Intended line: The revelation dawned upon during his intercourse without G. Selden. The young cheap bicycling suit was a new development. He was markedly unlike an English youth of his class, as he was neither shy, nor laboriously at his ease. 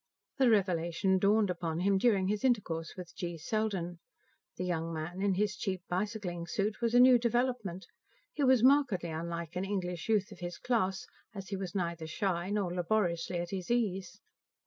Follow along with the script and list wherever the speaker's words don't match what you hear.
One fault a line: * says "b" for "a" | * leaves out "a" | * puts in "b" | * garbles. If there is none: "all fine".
* puts in "him"
* says "with" for "without"
* puts in "man in his"